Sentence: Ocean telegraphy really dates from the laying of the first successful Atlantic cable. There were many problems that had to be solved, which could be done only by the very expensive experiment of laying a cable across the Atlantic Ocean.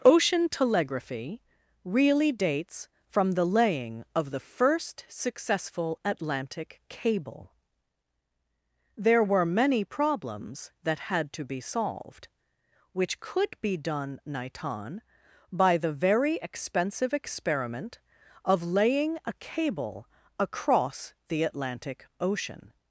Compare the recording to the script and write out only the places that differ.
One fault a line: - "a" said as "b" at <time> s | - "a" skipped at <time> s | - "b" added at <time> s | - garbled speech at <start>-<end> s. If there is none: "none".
- "only" said as "niton" at 14.2 s